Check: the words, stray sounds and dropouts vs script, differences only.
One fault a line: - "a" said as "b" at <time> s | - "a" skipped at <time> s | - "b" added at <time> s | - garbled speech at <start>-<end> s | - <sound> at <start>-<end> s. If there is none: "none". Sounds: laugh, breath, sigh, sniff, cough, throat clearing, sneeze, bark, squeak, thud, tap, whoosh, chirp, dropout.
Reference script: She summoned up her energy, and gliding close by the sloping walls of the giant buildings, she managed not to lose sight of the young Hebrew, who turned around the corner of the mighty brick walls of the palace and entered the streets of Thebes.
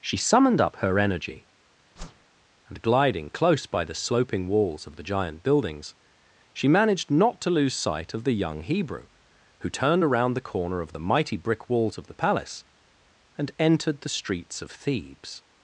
- whoosh at 2.0-2.2 s